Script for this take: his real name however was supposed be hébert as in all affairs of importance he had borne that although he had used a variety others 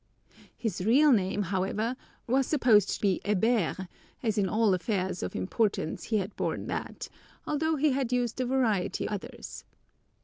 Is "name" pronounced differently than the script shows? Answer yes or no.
no